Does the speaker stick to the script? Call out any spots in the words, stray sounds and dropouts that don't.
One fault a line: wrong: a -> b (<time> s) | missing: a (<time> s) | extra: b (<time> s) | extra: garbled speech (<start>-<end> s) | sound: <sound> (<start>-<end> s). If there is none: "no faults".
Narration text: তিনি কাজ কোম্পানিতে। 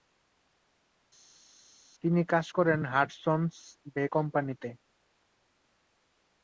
extra: করেন হাডসন'স বে (2.5 s)